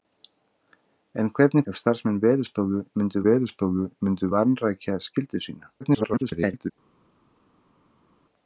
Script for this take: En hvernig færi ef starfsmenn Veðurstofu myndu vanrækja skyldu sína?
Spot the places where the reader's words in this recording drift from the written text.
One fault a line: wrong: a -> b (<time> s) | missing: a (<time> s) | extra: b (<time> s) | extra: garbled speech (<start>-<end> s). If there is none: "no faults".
missing: færi (1.6 s)
extra: Veðurstofu myndu (3.3 s)
extra: garbled speech (5.8-6.7 s)